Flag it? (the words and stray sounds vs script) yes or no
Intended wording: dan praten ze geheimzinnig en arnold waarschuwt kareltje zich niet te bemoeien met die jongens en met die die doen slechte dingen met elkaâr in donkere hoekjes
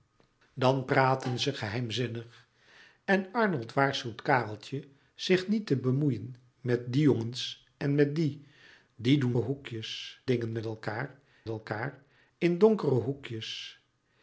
yes